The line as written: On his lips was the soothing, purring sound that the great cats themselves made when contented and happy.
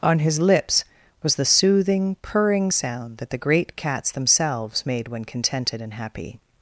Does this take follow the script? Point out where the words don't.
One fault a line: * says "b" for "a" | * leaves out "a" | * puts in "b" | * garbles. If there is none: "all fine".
all fine